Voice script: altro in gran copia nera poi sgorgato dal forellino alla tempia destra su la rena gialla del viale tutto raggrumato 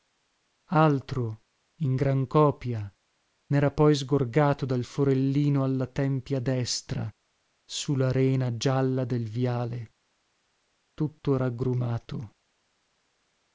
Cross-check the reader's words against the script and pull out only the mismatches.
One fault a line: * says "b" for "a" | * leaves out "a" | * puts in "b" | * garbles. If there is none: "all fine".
all fine